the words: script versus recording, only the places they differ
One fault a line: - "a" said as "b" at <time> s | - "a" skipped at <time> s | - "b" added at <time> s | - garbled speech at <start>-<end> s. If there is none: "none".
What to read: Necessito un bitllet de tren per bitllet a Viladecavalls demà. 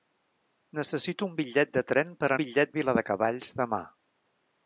none